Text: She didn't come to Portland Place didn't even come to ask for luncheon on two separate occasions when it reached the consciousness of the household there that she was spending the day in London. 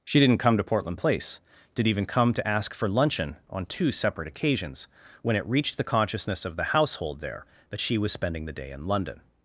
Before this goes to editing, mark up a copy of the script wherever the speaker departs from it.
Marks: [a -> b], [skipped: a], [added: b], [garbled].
She didn't come to Portland Place [didn't -> did] even come to ask for luncheon on two separate occasions when it reached the consciousness of the household there that she was spending the day in London.